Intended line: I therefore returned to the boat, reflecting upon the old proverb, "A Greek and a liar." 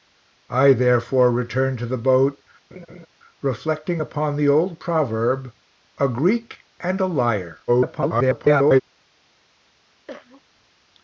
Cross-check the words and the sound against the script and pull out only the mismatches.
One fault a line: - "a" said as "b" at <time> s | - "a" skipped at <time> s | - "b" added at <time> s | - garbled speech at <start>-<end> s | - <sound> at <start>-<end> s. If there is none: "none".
- laugh at 2.7-3.1 s
- garbled speech at 7.7-8.8 s
- cough at 10.1-10.4 s